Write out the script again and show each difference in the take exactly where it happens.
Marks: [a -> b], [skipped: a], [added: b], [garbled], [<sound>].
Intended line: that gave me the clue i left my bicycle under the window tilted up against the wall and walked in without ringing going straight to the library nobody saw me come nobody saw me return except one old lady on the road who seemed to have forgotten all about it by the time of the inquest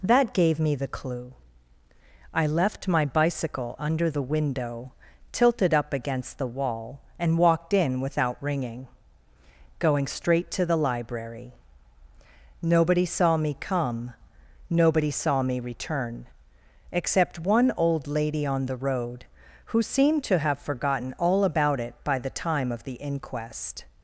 that gave me the clue i left my bicycle under the window tilted up against the wall and walked in without ringing going straight to the library nobody saw me come nobody saw me return except one old lady on the road who seemed to have forgotten all about it by the time of the inquest